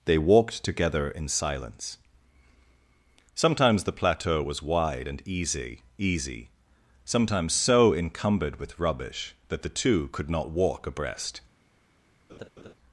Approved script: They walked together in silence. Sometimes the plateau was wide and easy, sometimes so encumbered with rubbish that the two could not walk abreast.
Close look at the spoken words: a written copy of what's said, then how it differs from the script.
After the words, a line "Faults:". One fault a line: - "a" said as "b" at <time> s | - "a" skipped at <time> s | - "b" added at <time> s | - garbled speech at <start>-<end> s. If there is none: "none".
They walked together in silence. Sometimes the plateau was wide and easy easy, sometimes so encumbered with rubbish that the two could not walk abreast.
Faults:
- "easy" added at 6.0 s